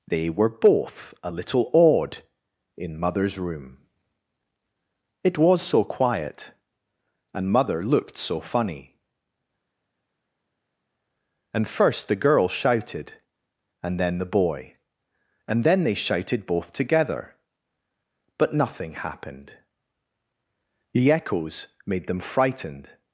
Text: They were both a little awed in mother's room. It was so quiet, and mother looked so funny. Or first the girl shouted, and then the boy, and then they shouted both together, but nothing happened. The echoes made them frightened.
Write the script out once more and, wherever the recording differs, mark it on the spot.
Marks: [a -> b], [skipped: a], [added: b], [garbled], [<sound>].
They were both a little awed in mother's room. It was so quiet, and mother looked so funny. [Or -> And] first the girl shouted, and then the boy, and then they shouted both together, but nothing happened. The echoes made them frightened.